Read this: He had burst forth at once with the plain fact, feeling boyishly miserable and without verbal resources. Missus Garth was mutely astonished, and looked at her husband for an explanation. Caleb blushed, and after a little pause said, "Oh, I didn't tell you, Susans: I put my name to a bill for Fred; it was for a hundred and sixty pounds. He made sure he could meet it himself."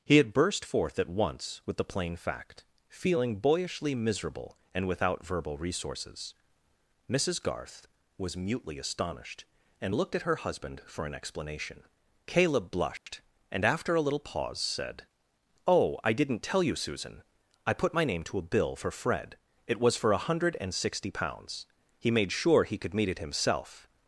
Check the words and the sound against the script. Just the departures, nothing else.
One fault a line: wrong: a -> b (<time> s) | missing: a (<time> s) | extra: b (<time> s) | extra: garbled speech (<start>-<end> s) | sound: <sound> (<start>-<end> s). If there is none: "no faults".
sound: dropout (13.0-13.1 s)
wrong: Susans -> Susan (16.7 s)